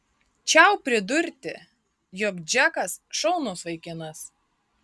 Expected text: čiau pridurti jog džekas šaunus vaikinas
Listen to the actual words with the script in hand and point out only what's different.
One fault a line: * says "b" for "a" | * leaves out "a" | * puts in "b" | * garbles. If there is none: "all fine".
all fine